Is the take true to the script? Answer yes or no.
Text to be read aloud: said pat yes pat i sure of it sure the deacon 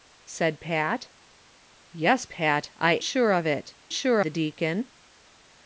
yes